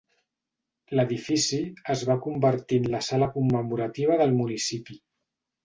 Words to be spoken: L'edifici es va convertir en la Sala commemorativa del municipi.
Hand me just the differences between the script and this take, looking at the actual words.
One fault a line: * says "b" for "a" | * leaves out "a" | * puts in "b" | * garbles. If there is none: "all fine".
all fine